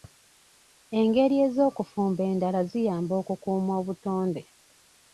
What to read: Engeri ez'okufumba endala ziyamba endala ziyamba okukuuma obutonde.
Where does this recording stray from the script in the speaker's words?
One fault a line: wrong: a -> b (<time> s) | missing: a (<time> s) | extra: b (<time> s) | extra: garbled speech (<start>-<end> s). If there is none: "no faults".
missing: endala ziyamba (3.1 s)